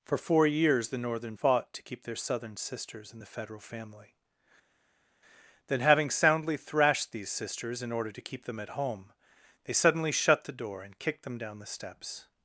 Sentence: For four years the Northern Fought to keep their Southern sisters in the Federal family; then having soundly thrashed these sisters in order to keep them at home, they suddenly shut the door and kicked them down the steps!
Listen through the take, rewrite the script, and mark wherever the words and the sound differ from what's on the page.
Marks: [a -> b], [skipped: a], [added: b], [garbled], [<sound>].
For four years the Northern Fought to keep their Southern sisters in the Federal family; then having soundly thrashed these sisters in order to keep them at home, they suddenly shut the door and kicked them down the steps!